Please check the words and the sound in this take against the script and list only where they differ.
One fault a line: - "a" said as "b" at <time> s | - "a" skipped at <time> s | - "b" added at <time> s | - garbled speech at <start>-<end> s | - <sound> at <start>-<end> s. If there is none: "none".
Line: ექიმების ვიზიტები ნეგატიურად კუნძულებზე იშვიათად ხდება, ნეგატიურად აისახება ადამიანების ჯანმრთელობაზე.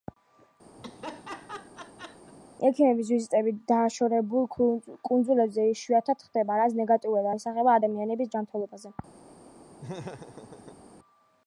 - laugh at 0.8-2.3 s
- "ნეგატიურად" said as "დაშორებულ" at 3.7 s
- "რაც" added at 6.6 s
- laugh at 9.8-10.8 s